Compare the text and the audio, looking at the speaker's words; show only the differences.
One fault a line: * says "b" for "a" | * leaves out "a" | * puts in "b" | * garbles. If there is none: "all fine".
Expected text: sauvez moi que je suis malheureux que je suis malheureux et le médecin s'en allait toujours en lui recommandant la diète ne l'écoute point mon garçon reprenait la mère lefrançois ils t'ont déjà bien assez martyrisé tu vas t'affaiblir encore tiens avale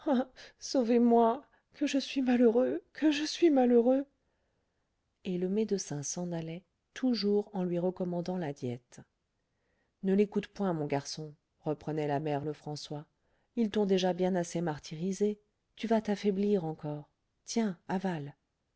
all fine